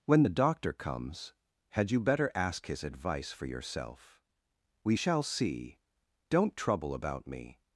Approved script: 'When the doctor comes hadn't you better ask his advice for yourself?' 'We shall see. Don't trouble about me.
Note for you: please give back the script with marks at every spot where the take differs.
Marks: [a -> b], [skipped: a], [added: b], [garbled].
'When the doctor comes [hadn't -> had] you better ask his advice for yourself?' 'We shall see. Don't trouble about me.